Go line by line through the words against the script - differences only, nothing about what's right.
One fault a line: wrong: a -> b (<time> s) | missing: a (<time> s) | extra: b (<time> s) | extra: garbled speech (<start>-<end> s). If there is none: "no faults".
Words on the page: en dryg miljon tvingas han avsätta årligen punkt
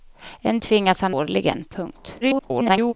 missing: dryg miljon (0.6 s)
missing: avsätta (1.2 s)
extra: garbled speech (2.2-2.9 s)